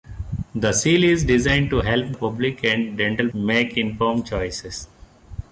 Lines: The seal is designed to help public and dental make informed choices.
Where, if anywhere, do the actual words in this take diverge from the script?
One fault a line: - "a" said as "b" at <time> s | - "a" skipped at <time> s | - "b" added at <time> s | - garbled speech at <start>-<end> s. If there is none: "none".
none